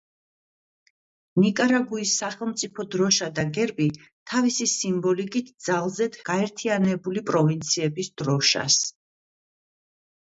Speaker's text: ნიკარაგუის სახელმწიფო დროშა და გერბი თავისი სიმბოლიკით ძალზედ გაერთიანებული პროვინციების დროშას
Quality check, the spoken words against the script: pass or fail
pass